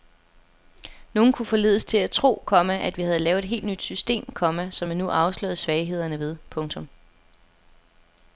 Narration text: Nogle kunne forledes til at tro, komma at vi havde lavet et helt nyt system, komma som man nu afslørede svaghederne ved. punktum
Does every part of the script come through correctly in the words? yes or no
yes